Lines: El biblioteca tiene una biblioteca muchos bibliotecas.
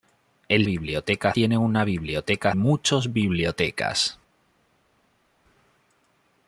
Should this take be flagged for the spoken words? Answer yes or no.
no